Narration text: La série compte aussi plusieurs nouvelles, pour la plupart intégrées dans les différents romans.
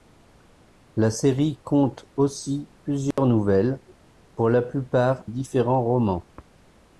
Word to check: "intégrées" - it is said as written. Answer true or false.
false